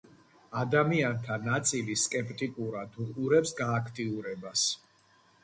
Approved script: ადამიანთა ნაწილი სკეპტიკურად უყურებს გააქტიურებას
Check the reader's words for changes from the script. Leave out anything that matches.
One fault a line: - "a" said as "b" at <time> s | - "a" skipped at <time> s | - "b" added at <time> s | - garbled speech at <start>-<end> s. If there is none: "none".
none